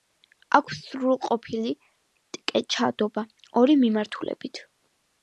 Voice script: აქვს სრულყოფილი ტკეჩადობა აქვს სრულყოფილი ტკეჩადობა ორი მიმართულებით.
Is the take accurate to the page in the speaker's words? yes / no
no